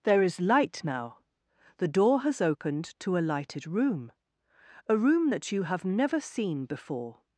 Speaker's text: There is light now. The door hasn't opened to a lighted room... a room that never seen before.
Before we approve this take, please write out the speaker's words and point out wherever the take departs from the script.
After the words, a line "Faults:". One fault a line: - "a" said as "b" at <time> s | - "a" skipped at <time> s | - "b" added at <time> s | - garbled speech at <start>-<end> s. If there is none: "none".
There is light now. The door has opened to a lighted room... a room that you have never seen before.
Faults:
- "hasn't" said as "has" at 2.2 s
- "you have" added at 5.5 s